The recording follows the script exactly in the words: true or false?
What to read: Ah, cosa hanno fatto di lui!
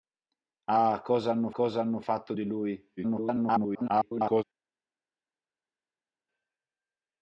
false